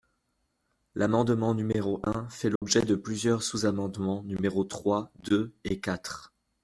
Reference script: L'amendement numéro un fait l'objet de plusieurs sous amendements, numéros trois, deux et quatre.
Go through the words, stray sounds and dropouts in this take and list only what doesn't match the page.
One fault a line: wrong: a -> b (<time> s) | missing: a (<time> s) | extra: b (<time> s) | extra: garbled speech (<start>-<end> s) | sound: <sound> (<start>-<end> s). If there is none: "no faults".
sound: dropout (2.6-2.6 s)